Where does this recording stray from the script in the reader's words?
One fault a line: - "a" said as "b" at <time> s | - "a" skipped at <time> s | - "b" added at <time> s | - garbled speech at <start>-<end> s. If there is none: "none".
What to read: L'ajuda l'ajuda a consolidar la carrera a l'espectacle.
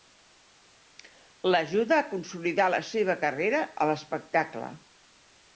- "l'ajuda" skipped at 2.0 s
- "seva" added at 2.9 s